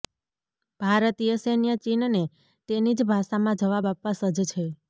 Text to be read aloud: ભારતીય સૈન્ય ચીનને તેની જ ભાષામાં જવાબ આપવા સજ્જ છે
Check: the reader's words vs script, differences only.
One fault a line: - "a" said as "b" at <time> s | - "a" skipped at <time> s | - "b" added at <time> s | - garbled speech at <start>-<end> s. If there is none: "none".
none